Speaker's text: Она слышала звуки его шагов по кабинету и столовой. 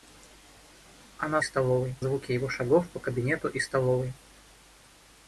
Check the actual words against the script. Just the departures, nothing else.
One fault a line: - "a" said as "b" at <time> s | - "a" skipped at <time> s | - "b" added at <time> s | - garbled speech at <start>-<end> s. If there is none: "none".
- "слышала" said as "столовой" at 1.4 s